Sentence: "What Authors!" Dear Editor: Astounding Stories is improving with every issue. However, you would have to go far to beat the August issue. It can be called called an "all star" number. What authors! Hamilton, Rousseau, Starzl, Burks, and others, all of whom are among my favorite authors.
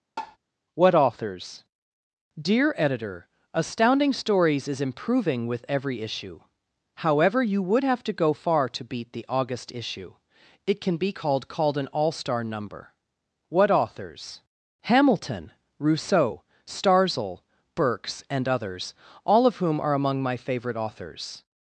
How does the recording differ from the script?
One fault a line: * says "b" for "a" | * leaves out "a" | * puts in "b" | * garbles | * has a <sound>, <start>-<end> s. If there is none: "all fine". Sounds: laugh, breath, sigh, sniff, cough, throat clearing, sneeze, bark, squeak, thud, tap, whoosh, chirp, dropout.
* has a tap, 0.2-0.4 s